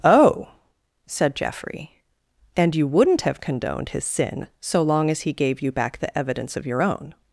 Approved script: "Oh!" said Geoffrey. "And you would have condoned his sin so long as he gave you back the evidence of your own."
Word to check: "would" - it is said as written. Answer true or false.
false